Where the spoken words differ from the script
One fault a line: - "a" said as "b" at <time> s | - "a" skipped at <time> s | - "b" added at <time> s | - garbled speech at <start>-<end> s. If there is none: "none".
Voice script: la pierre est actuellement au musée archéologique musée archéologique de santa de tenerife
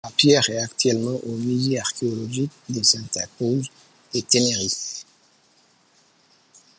- "musée archéologique" skipped at 2.5 s
- "cruz" added at 3.4 s